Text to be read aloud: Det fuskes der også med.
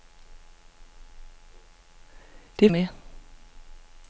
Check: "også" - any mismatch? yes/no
yes